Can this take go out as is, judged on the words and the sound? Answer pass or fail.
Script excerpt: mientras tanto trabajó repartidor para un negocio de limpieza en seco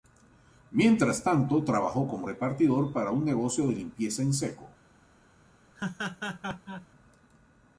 fail